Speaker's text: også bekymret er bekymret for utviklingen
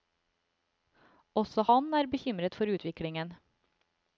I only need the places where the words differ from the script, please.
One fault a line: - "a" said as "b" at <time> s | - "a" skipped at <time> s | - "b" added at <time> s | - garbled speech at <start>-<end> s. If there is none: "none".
- "bekymret" said as "han" at 1.7 s